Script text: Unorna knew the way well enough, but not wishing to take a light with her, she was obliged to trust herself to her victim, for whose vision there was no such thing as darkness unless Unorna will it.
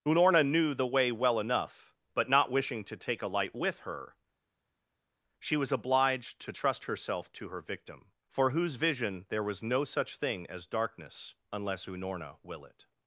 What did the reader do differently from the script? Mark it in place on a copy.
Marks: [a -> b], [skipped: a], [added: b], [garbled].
Unorna knew the way well enough, but not wishing to take a light with her, she was obliged to trust herself to her victim, for whose vision there was no such thing as darkness unless Unorna will it.